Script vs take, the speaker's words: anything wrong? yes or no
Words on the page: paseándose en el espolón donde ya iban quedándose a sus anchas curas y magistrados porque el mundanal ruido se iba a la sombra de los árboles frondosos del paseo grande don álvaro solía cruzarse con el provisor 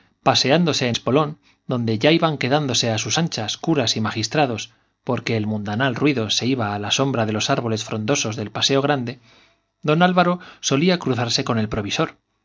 yes